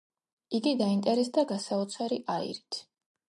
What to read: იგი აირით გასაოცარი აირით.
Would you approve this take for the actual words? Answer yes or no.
no